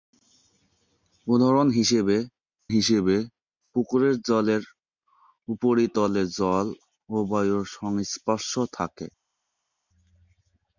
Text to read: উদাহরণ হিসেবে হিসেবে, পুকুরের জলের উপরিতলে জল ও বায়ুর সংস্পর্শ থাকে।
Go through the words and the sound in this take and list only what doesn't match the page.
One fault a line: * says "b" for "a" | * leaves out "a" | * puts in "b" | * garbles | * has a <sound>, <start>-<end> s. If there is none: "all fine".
all fine